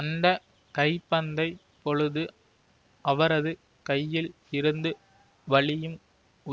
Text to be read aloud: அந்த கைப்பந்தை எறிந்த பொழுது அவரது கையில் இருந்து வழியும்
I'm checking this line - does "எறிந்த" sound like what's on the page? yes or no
no